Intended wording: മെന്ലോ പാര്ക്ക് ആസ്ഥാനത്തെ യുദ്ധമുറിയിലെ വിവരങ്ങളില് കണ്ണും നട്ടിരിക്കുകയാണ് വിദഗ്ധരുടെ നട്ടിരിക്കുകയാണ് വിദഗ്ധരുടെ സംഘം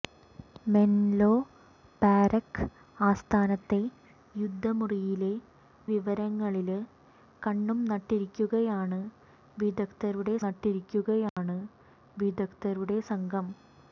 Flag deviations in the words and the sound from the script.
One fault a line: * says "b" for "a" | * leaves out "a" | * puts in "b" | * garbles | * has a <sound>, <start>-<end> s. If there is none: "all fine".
* has a dropout, 11.3-11.4 s